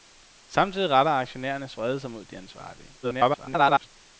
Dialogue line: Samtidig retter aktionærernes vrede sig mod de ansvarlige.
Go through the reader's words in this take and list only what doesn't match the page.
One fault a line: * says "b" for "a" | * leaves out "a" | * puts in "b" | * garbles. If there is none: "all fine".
* garbles